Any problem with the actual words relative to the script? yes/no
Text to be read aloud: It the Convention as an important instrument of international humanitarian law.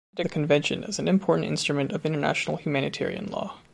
no